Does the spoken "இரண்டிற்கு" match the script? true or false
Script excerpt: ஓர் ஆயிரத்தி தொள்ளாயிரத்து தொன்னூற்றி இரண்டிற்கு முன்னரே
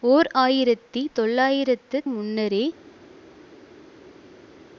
false